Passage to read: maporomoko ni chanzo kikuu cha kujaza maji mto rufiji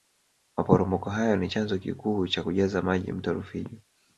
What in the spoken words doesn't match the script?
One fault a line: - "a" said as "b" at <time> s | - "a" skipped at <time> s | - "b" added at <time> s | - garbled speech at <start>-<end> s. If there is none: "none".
- "hayo" added at 1.1 s